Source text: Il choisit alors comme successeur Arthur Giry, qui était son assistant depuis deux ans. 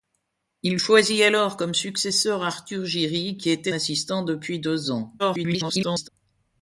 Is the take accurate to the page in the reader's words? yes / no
no